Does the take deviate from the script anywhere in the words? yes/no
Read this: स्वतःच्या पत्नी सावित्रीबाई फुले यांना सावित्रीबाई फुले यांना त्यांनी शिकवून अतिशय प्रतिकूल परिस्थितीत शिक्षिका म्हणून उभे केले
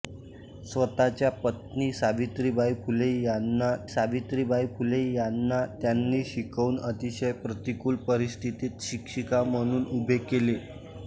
no